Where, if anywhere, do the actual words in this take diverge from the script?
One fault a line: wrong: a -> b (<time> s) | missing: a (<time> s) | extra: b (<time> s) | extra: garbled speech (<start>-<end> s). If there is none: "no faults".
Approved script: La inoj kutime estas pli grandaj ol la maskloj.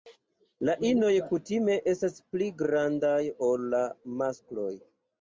no faults